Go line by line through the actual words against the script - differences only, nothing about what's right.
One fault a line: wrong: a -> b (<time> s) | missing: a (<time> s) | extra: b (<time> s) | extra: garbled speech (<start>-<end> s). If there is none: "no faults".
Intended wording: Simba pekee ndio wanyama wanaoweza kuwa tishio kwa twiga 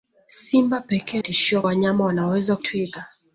wrong: ndio -> tishio (1.2 s)
missing: kuwa tishio kwa (2.6 s)